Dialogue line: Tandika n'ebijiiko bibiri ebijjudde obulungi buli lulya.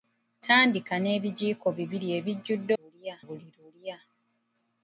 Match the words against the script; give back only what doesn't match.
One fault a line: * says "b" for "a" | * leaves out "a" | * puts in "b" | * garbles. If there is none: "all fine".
* says "lulya" for "obulungi"